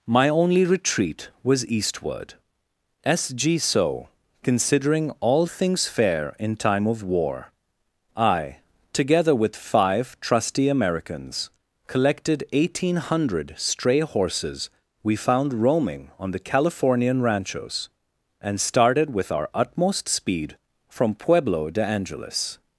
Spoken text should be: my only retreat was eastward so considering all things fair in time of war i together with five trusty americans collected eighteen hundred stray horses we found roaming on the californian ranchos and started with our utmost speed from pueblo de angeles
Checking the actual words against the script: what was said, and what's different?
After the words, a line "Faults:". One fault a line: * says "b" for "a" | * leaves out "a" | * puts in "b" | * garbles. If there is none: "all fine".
my only retreat was eastward s g so considering all things fair in time of war i together with five trusty americans collected eighteen hundred stray horses we found roaming on the californian ranchos and started with our utmost speed from pueblo de angeles
Faults:
* puts in "s g"